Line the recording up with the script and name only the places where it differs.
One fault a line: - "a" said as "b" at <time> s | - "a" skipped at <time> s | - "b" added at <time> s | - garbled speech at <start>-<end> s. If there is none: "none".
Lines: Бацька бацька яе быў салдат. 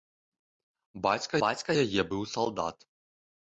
none